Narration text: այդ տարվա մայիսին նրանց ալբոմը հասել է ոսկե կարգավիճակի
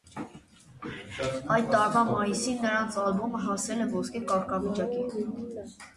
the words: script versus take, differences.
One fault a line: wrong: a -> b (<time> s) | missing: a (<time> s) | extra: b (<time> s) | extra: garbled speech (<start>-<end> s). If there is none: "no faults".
no faults